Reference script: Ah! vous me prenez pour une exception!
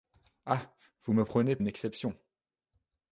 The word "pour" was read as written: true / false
false